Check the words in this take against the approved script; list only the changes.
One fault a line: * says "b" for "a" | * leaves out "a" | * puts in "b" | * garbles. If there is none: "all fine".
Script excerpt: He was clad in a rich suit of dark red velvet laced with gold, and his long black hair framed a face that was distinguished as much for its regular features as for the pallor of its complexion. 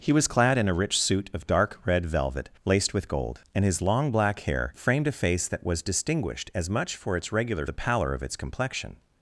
* leaves out "features as for"